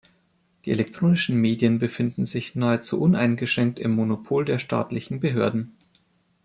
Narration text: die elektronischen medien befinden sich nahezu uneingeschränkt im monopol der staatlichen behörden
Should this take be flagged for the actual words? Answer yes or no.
no